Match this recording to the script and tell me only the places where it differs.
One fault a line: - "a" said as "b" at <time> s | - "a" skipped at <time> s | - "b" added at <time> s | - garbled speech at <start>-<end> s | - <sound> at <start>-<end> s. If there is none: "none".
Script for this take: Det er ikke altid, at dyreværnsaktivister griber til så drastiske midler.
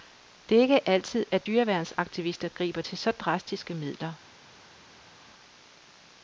none